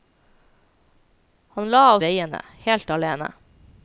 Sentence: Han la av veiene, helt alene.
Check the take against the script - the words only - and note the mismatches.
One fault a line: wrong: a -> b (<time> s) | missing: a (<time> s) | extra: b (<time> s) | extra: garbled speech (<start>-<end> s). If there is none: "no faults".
no faults